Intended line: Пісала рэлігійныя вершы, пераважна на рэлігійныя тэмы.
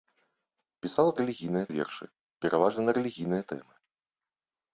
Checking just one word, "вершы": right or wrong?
right